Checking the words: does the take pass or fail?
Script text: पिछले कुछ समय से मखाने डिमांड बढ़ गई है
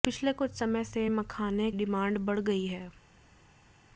pass